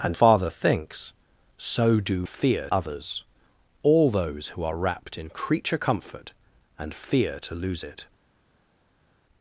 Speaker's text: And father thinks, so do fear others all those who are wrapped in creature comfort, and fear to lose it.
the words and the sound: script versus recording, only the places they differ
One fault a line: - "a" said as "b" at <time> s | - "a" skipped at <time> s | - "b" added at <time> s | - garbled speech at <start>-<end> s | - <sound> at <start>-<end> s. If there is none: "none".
none